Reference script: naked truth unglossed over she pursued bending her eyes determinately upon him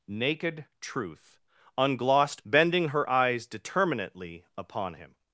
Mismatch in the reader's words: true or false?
true